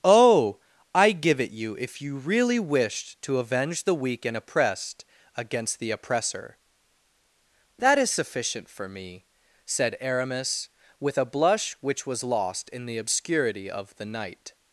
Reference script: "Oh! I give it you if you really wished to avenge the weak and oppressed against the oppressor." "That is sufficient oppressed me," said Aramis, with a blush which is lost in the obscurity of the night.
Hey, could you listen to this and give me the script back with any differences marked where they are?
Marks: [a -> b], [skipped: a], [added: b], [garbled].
"Oh! I give it you if you really wished to avenge the weak and oppressed against the oppressor." "That is sufficient [oppressed -> for] me," said Aramis, with a blush which [is -> was] lost in the obscurity of the night.